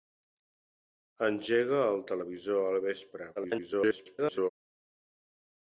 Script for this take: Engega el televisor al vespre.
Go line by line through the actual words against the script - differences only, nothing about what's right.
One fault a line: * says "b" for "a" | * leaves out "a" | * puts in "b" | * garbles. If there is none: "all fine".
* garbles